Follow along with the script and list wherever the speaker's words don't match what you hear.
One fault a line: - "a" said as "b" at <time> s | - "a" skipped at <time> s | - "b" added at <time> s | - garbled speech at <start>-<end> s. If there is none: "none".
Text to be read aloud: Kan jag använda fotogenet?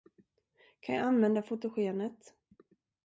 none